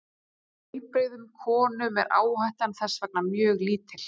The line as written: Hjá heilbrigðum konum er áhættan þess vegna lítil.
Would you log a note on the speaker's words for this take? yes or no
yes